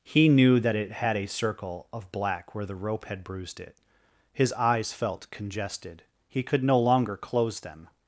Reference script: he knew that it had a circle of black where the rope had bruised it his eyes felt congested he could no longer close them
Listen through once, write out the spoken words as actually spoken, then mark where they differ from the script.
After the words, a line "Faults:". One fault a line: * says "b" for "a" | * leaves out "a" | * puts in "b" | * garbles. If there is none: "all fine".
he knew that it had a circle of black where the rope had bruised it his eyes felt congested he could no longer close them
Faults:
all fine